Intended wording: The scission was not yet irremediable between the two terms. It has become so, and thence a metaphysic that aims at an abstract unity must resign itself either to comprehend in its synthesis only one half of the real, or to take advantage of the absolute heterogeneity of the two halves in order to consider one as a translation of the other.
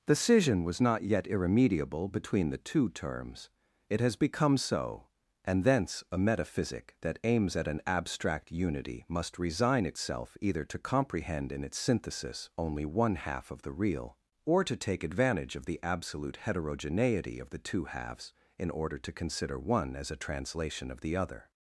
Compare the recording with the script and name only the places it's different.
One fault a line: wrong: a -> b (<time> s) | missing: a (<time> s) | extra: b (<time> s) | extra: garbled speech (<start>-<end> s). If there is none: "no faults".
no faults